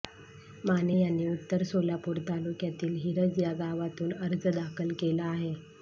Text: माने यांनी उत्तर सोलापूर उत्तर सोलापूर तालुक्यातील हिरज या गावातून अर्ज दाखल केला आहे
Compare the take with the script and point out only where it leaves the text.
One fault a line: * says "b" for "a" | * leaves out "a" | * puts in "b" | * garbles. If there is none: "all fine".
* leaves out "उत्तर सोलापूर"